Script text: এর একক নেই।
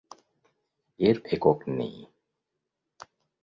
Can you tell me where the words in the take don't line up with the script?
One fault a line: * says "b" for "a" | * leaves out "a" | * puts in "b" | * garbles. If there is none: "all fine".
all fine